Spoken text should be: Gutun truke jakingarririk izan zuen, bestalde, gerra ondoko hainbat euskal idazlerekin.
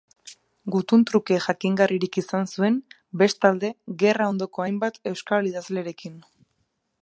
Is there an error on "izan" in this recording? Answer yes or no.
no